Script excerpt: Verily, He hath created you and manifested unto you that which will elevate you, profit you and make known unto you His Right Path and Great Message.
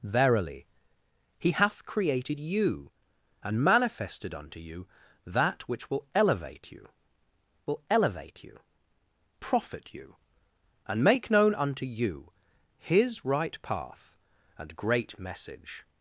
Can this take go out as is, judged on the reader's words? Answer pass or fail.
fail